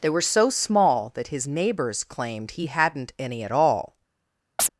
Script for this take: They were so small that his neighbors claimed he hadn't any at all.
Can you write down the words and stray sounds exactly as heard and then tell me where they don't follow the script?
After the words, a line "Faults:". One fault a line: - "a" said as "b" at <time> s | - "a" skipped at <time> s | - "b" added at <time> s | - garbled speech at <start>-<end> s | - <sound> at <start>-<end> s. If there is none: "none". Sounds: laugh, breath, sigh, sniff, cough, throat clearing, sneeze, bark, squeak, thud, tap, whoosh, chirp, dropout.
They were so small that his neighbors claimed he hadn't any at all.
Faults:
- chirp at 4.6-4.7 s